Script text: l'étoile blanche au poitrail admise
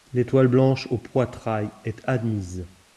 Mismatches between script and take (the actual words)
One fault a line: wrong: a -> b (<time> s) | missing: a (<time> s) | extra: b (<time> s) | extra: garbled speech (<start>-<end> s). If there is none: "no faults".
extra: est (1.8 s)